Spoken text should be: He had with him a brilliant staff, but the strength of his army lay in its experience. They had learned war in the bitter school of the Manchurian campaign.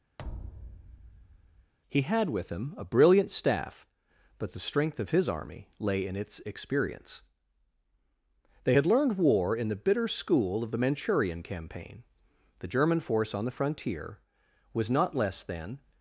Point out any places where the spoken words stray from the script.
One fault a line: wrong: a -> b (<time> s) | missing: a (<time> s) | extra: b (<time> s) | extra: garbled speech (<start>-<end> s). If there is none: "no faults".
extra: The German force on the frontier was not less than (12.6 s)